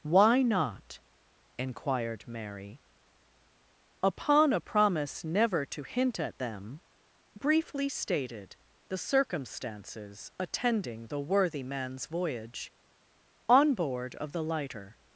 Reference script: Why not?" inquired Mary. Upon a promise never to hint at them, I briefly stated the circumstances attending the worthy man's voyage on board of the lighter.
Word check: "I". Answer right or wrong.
wrong